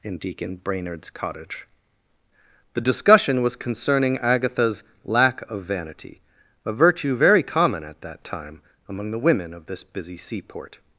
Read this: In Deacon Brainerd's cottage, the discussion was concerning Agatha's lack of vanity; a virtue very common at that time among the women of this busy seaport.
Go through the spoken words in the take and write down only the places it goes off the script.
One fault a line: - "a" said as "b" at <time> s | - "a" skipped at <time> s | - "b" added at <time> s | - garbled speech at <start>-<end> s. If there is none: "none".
none